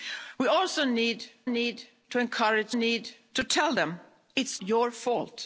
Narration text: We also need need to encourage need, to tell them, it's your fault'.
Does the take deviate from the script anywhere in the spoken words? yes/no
no